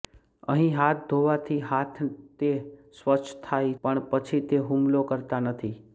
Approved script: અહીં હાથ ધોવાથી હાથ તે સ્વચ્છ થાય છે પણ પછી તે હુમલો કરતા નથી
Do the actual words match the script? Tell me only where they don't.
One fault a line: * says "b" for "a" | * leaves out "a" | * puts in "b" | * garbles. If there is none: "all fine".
* leaves out "છે"